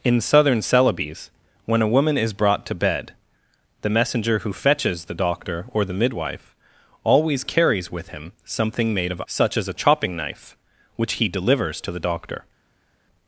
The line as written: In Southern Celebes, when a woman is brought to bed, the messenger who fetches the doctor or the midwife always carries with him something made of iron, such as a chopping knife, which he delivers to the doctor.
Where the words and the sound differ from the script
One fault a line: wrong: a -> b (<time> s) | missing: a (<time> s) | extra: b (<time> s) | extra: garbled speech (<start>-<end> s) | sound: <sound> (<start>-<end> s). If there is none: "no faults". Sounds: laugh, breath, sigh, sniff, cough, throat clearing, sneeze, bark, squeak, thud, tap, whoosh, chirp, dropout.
missing: iron (9.2 s)